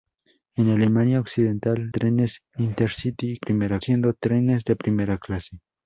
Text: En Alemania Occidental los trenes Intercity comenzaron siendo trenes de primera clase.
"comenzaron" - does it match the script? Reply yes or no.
no